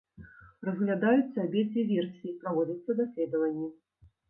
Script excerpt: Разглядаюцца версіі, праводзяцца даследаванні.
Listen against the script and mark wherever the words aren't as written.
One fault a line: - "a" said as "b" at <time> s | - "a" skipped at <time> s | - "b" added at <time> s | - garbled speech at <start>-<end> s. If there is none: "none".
- "абедзве" added at 1.4 s